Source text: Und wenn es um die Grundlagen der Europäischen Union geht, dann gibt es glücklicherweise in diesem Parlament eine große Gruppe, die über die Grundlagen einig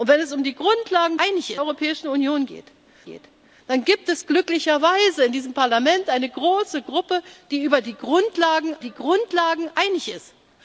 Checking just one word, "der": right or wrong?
wrong